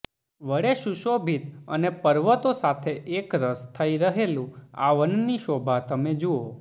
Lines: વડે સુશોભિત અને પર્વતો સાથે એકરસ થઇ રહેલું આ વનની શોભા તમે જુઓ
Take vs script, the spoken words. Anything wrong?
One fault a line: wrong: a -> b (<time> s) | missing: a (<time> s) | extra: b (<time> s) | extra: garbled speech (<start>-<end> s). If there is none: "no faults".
no faults